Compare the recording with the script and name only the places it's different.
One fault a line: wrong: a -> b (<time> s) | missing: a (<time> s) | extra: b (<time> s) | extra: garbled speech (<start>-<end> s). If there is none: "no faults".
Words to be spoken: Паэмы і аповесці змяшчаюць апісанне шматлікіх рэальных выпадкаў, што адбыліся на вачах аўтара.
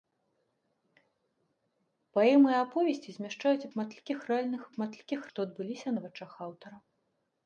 missing: апісанне (3.7 s)
wrong: выпадкаў -> шматлікіх (4.7 s)